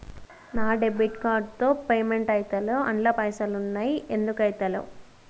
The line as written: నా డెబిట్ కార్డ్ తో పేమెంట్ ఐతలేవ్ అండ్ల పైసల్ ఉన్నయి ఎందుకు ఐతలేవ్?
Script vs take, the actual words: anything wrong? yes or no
no